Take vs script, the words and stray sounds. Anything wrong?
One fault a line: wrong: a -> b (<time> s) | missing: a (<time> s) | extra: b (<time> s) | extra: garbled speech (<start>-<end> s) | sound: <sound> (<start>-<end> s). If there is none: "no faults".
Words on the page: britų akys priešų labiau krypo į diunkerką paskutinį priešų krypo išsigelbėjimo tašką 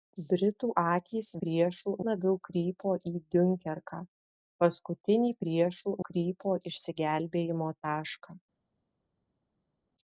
no faults